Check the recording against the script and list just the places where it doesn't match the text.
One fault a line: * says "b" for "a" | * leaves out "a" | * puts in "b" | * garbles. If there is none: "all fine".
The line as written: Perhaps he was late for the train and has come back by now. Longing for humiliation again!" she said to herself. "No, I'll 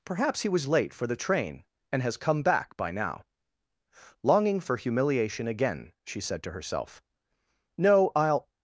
all fine